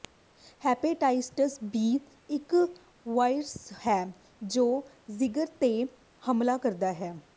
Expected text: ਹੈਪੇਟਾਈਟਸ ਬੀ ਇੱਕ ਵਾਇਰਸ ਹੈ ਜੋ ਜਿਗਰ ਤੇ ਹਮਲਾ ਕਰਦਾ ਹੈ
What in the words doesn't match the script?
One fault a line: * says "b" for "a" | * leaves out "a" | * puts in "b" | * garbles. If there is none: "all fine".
all fine